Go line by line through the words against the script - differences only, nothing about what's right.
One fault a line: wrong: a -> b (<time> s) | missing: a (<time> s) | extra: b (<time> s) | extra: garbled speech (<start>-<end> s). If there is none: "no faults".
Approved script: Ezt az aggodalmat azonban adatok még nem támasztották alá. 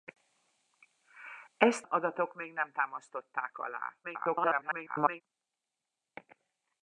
missing: az aggodalmat azonban (1.9 s)
extra: garbled speech (4.0-5.2 s)